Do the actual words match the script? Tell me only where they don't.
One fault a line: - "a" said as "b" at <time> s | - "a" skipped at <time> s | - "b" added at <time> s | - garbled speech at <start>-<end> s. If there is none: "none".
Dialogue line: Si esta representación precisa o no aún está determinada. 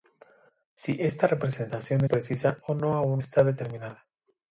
none